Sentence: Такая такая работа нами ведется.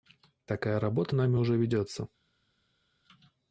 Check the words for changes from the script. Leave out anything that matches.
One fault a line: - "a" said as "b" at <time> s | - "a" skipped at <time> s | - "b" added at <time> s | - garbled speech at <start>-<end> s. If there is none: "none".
- "такая" skipped at 0.8 s
- "уже" added at 1.3 s